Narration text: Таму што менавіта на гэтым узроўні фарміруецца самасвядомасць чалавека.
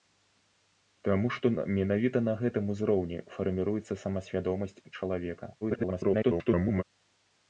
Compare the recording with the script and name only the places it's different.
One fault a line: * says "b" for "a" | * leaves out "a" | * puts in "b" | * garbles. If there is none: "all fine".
* garbles